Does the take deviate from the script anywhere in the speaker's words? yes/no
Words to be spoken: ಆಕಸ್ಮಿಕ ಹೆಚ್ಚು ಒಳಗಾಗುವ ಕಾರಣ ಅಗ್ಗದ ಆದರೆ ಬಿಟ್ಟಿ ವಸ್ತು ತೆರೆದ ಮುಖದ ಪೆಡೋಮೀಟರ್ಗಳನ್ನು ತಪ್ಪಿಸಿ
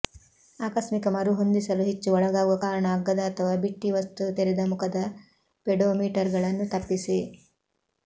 yes